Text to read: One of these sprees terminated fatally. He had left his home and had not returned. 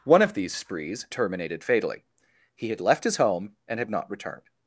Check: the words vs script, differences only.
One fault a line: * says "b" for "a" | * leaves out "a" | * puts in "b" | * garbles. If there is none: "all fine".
all fine